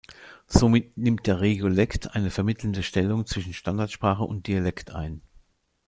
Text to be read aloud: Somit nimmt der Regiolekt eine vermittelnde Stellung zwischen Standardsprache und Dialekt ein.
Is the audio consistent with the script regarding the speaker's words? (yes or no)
yes